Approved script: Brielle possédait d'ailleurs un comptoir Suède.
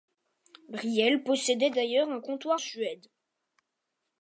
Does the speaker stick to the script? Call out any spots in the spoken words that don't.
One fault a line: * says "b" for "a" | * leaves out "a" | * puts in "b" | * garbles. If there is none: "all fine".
all fine